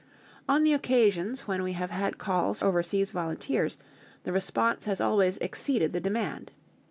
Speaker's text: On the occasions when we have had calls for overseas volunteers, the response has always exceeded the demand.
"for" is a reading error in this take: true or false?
true